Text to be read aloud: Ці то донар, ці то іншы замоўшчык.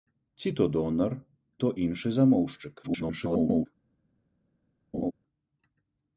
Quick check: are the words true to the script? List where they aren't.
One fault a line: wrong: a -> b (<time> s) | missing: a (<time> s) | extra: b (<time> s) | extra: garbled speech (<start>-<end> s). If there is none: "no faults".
missing: ці (1.1 s)
extra: garbled speech (2.8-3.7 s)